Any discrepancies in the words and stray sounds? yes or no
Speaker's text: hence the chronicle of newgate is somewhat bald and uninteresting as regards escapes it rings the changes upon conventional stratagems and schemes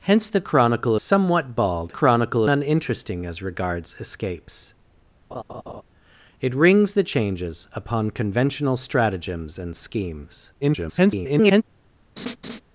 yes